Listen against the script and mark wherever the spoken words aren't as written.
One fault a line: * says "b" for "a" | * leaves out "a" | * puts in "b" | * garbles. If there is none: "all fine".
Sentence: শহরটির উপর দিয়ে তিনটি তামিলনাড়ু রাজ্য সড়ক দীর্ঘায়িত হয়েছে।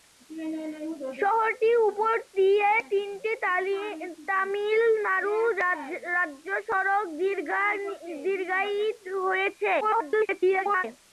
* garbles